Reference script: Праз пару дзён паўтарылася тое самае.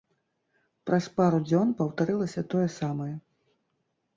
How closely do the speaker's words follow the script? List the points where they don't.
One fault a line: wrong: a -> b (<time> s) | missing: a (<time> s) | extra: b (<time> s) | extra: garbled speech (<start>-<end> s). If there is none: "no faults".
no faults